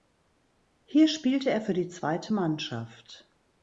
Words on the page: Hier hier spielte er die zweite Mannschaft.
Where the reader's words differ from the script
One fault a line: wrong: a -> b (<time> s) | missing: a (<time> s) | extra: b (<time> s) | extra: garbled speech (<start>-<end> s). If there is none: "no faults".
missing: hier (1.1 s)
extra: für (1.6 s)